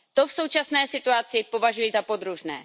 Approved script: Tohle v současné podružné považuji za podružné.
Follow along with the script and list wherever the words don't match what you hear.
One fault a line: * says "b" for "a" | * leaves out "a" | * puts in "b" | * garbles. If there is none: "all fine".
* says "To" for "Tohle"
* says "situaci" for "podružné"